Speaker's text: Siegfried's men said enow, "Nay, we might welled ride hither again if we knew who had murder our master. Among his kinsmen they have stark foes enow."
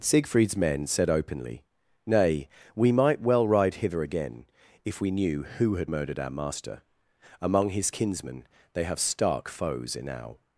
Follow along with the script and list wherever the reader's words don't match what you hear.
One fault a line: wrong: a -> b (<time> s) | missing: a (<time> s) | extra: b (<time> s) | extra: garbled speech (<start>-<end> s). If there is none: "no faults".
wrong: enow -> openly (1.1 s)
wrong: welled -> well (3.2 s)
wrong: murder -> murdered (5.9 s)